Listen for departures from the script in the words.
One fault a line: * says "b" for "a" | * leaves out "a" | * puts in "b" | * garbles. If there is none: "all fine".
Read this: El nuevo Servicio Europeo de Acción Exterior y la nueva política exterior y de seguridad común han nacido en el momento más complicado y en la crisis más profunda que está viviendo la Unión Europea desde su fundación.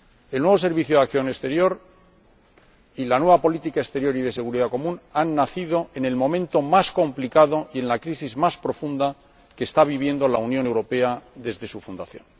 all fine